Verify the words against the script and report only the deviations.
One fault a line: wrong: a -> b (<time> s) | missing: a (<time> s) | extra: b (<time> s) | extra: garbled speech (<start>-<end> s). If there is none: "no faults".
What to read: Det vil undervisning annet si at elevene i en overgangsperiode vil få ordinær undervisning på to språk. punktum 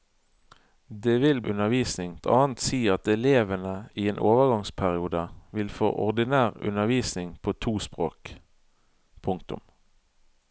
no faults